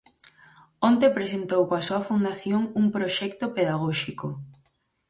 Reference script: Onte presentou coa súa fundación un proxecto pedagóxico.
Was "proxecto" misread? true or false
false